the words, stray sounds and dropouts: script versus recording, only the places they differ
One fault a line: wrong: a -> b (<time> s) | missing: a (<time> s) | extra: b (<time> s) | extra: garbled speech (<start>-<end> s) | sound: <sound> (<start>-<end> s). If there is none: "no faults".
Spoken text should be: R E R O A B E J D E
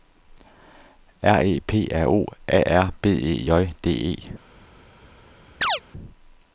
extra: P (1.6 s)
extra: R (2.8 s)
sound: chirp (5.6-5.8 s)